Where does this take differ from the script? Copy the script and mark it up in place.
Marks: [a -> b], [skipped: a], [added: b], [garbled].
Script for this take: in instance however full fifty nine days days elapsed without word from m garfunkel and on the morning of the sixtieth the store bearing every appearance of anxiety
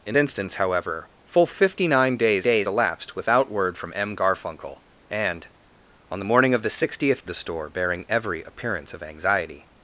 in instance however full fifty nine days days elapsed without word from m garfunkel and on the morning of the sixtieth the store bearing every appearance of anxiety